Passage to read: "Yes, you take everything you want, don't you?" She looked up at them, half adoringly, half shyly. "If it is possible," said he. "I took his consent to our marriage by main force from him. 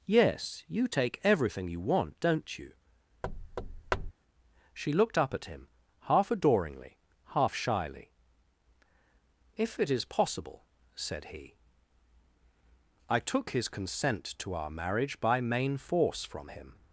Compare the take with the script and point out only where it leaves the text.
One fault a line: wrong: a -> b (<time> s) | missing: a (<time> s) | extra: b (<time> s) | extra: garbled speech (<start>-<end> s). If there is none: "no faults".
wrong: them -> him (5.5 s)